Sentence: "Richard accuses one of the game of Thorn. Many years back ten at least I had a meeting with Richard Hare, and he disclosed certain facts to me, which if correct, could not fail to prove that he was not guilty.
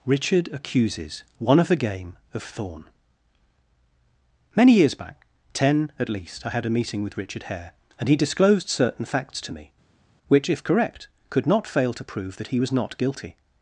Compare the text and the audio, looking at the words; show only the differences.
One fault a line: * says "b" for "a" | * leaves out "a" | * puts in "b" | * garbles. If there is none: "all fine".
all fine